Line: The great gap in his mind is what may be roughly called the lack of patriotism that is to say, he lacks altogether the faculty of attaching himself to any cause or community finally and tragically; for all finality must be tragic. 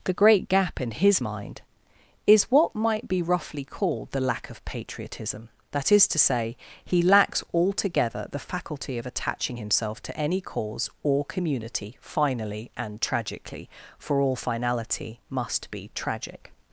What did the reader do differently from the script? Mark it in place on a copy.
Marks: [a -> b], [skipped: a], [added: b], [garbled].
The great gap in his mind is what [may -> might] be roughly called the lack of patriotism that is to say, he lacks altogether the faculty of attaching himself to any cause or community finally and tragically; for all finality must be tragic.